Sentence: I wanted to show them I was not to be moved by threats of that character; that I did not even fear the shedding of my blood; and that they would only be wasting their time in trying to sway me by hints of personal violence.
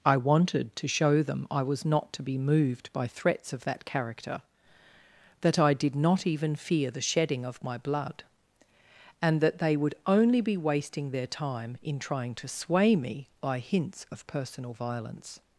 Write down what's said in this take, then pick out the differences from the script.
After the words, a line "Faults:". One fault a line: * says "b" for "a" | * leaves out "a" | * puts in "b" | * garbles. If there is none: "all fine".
I wanted to show them I was not to be moved by threats of that character; that I did not even fear the shedding of my blood; and that they would only be wasting their time in trying to sway me by hints of personal violence.
Faults:
all fine